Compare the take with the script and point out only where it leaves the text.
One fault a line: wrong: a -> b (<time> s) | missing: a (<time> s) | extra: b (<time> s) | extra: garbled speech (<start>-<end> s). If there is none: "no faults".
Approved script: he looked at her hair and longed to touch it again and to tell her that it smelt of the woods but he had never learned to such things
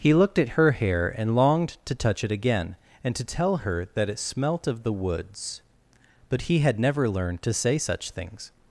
extra: say (7.5 s)